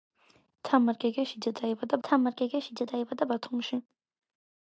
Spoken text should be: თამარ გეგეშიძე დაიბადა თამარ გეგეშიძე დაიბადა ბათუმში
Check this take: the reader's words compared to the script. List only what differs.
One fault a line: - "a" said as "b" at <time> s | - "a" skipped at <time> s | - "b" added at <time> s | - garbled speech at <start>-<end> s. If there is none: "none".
none